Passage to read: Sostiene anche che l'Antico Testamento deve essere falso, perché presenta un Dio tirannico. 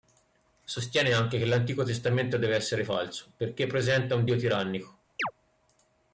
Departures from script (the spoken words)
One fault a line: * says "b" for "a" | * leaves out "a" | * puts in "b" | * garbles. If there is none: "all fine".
all fine